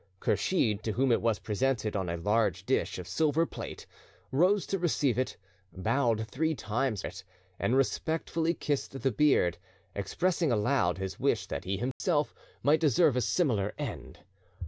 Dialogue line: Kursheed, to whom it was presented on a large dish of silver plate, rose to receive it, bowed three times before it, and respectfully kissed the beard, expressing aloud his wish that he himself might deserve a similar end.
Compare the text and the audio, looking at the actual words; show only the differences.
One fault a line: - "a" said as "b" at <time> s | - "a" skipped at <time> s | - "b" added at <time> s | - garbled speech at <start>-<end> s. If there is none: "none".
- "before" skipped at 7.0 s